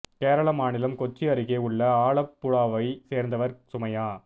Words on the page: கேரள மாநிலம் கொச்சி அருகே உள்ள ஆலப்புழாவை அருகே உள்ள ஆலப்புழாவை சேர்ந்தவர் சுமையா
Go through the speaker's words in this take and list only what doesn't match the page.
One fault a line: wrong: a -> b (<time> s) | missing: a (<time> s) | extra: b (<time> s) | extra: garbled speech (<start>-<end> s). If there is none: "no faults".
missing: அருகே உள்ள ஆலப்புழாவை (2.9 s)